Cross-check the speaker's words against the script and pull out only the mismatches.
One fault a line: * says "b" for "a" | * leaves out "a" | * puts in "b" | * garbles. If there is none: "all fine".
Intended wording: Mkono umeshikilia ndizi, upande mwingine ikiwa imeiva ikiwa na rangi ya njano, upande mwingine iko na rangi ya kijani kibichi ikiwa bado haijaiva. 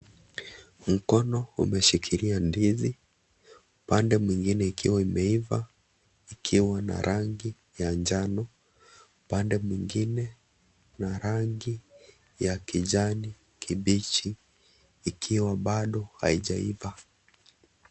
* leaves out "iko"